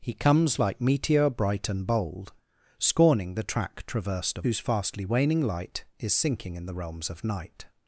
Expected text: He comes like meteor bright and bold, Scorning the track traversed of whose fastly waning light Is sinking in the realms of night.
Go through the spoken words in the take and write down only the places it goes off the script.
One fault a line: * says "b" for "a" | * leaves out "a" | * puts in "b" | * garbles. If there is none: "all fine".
all fine